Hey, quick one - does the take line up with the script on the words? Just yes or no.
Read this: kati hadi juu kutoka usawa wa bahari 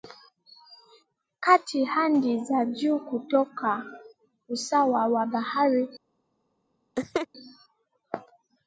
no